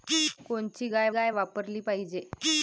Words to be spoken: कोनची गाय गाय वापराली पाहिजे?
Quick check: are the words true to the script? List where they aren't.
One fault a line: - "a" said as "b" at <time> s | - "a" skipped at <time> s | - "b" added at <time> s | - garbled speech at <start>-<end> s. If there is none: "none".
none